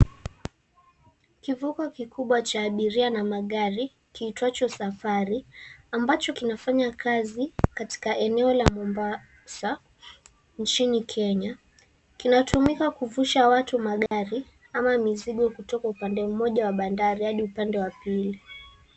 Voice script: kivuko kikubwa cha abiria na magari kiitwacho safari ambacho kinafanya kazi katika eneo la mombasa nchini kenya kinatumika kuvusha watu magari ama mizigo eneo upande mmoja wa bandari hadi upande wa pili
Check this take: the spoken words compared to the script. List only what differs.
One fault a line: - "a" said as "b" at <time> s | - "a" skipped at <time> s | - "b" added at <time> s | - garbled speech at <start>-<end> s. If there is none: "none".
- "eneo" said as "kutoka" at 15.5 s